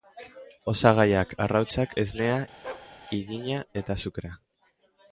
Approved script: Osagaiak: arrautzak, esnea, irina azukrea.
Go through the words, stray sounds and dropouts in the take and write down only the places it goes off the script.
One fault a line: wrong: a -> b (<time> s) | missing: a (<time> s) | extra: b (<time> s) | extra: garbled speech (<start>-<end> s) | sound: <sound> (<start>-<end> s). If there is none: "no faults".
sound: bark (2.6-2.9 s)
extra: eta (3.8 s)